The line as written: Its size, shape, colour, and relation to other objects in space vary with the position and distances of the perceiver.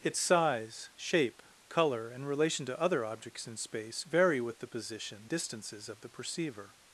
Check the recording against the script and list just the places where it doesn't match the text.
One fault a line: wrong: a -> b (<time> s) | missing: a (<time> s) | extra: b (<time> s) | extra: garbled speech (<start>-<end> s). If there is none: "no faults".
missing: and (5.3 s)